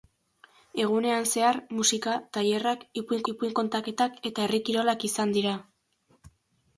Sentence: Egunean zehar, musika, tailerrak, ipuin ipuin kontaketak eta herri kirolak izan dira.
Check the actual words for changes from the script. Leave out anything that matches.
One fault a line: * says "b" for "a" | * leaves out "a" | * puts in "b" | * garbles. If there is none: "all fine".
all fine